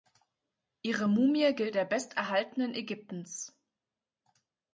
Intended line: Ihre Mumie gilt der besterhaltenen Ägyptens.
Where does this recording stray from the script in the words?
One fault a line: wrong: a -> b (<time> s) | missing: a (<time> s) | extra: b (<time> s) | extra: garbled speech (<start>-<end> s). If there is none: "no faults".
no faults